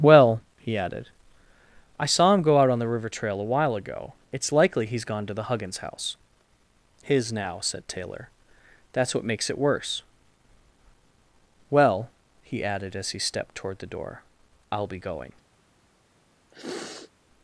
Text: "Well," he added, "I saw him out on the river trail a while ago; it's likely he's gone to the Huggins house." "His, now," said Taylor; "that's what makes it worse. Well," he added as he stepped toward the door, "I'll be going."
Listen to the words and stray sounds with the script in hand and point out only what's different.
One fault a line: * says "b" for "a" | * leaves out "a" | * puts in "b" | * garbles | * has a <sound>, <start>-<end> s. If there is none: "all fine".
* puts in "go"
* has a sniff, 16.5-17.1 s